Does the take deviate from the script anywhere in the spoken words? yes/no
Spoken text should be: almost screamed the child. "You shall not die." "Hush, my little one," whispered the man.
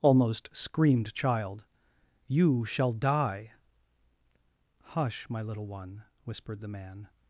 yes